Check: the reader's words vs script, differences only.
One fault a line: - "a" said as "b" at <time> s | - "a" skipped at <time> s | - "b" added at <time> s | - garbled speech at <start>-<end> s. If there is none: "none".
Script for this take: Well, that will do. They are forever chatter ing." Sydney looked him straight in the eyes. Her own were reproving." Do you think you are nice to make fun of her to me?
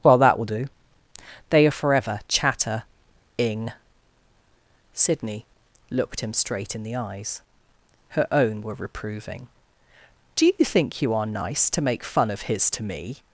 - "her" said as "his" at 12.4 s